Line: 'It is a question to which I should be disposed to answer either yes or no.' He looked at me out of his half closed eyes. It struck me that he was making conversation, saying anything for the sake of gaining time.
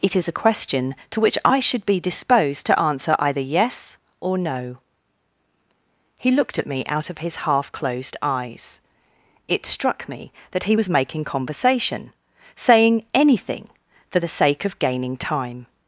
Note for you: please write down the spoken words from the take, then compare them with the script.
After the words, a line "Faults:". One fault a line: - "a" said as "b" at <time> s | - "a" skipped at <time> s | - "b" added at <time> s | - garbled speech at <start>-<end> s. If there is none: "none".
'It is a question to which I should be disposed to answer either yes or no.' He looked at me out of his half closed eyes. It struck me that he was making conversation, saying anything for the sake of gaining time.
Faults:
none